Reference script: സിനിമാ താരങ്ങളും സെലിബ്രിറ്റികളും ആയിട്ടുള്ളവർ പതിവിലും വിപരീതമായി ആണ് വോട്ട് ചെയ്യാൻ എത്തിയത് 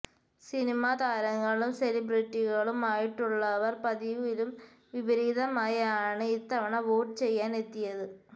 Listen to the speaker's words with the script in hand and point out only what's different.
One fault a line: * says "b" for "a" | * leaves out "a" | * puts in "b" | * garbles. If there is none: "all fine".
* puts in "ഇത്തവണ"